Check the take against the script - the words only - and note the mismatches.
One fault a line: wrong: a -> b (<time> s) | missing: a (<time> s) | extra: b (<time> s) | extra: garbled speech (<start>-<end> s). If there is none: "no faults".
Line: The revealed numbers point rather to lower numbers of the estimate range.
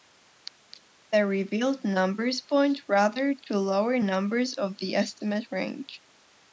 no faults